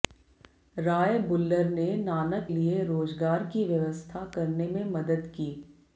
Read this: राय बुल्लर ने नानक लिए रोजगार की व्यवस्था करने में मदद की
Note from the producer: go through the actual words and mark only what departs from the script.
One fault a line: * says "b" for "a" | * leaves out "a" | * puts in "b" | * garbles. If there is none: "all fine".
all fine